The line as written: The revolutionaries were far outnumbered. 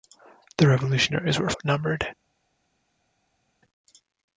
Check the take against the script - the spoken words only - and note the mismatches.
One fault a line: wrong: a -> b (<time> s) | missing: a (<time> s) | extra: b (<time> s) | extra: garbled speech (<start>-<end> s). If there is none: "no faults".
missing: far (1.5 s)